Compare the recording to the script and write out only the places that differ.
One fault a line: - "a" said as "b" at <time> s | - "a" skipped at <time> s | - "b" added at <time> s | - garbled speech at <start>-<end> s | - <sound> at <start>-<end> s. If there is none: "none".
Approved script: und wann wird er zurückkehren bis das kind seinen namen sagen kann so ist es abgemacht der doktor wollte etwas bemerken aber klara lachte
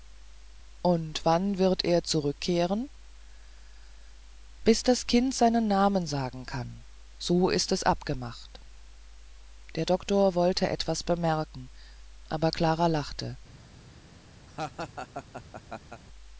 - laugh at 14.5-16.0 s